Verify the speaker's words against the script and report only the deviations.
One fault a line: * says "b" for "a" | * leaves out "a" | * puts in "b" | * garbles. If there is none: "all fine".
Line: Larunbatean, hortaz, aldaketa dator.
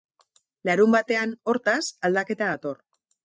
all fine